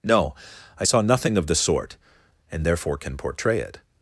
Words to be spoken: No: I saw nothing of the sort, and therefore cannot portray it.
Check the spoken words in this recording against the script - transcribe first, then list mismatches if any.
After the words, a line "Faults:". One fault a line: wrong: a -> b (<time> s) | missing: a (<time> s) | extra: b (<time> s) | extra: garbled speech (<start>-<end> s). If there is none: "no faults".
No: I saw nothing of the sort, and therefore can portray it.
Faults:
wrong: cannot -> can (3.0 s)